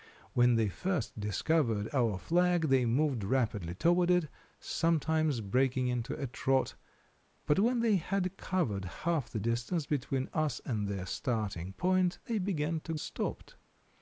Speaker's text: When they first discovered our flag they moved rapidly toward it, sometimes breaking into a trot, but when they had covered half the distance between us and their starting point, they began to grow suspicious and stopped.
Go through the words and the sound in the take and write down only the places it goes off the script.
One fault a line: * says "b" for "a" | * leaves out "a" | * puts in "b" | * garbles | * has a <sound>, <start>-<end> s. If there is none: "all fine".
* leaves out "grow suspicious and"